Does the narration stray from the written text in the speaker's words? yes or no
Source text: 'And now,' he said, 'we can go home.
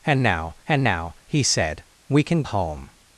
yes